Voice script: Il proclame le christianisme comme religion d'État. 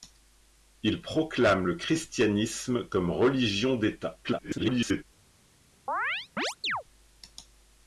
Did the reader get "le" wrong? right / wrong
right